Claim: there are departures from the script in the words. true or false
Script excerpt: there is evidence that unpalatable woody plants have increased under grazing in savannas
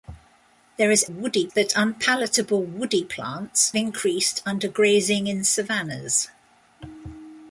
true